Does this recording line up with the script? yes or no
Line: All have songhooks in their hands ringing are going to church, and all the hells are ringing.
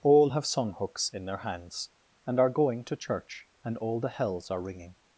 no